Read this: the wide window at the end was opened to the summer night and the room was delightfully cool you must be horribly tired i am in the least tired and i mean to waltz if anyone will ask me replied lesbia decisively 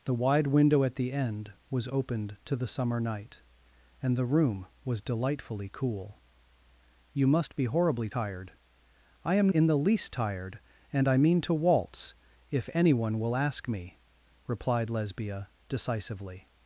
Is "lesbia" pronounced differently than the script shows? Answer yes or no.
no